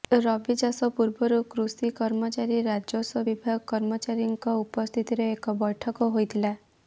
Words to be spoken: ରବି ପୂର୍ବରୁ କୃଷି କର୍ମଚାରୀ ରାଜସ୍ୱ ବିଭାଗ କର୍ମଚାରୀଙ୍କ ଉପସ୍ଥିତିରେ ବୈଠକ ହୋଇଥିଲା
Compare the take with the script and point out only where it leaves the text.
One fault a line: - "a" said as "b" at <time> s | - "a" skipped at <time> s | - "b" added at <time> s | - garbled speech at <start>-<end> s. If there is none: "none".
- "ଚାଷ" added at 0.6 s
- "ଏକ" added at 5.3 s